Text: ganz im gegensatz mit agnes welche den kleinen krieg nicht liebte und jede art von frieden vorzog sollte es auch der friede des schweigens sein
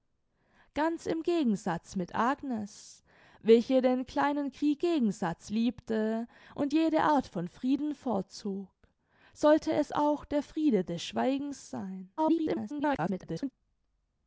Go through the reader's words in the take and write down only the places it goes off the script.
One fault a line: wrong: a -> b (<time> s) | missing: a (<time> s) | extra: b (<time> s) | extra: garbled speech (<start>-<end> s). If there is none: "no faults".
wrong: nicht -> gegensatz (4.8 s)
extra: garbled speech (12.2-13.5 s)